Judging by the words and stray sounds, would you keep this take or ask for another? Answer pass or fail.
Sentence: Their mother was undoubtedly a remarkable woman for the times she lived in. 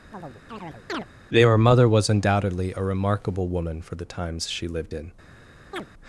fail